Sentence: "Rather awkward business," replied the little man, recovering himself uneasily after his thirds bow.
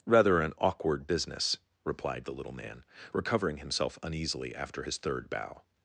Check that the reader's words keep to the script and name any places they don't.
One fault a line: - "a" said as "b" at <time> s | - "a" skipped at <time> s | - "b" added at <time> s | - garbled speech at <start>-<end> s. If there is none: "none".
- "an" added at 0.4 s
- "thirds" said as "third" at 5.0 s